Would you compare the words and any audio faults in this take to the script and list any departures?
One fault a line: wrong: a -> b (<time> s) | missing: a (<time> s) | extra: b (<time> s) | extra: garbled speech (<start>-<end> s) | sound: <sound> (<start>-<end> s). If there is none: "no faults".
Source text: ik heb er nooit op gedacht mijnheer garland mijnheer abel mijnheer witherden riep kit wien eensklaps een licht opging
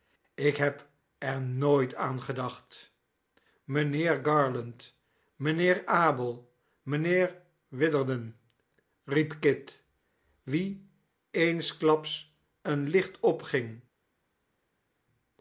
wrong: op -> aan (1.9 s)